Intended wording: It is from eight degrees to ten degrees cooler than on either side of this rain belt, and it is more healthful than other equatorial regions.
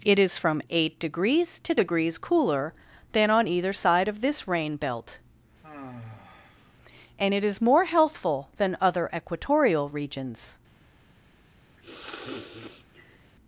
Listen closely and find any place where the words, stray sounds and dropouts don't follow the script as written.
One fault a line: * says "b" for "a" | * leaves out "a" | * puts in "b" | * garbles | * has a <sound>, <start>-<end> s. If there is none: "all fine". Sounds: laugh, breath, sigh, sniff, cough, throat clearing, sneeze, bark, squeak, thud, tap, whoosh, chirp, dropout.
* leaves out "ten"
* has a sigh, 5.6-6.7 s
* has a sniff, 11.8-13.3 s